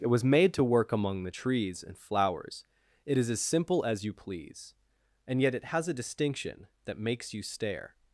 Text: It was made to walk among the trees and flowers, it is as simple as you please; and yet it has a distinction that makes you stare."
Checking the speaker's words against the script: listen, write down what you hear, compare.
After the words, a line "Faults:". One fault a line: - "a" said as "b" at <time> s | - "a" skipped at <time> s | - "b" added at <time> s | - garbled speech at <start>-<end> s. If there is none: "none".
It was made to work among the trees and flowers, it is as simple as you please; and yet it has a distinction that makes you stare."
Faults:
- "walk" said as "work" at 0.6 s